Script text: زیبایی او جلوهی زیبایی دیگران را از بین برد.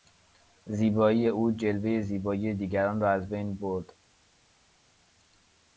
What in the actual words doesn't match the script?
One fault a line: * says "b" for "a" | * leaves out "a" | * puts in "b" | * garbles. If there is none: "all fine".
all fine